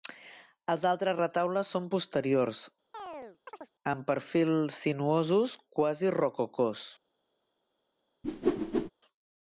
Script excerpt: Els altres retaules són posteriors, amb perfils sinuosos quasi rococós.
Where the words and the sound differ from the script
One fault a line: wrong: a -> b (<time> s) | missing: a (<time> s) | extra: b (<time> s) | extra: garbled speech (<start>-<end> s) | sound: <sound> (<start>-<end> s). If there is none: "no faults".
sound: chirp (2.9-3.7 s)
sound: whoosh (8.2-8.9 s)